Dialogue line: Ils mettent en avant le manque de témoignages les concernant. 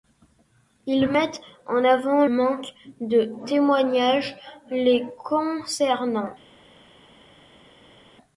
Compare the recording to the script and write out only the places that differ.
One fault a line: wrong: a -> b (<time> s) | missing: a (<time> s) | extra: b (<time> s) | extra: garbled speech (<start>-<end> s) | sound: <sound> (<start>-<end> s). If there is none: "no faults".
missing: le (2.2 s)